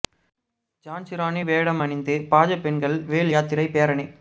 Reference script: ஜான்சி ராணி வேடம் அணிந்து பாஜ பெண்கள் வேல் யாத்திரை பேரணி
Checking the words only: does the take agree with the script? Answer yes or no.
yes